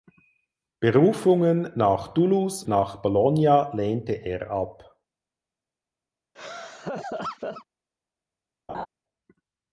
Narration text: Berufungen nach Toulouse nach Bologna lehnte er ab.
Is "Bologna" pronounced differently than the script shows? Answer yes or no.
no